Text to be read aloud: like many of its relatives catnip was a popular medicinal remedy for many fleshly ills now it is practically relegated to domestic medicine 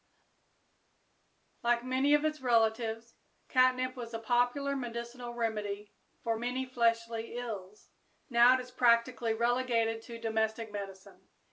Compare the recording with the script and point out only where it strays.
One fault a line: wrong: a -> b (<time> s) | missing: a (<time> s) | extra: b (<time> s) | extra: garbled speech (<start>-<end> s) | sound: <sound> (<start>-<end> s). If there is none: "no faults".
no faults